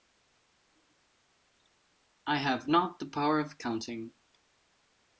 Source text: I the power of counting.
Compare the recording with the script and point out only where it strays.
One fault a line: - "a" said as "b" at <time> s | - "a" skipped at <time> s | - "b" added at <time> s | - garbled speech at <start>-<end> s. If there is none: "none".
- "have not" added at 2.4 s